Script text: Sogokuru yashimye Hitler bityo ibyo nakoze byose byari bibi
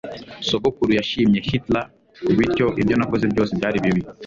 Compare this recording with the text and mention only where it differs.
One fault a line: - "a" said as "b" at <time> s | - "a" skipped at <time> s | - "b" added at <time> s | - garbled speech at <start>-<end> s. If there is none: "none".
none